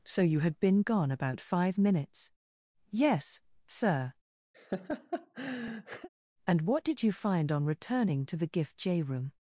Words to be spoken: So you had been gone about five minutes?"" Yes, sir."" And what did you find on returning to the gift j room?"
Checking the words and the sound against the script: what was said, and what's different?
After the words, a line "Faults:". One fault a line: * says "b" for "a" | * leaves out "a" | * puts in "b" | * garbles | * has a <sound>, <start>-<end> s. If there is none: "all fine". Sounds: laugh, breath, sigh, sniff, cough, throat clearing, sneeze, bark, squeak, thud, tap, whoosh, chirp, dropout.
So you had been gone about five minutes?"" Yes, sir."" And what did you find on returning to the gift j room?"
Faults:
* has a laugh, 4.5-6.1 s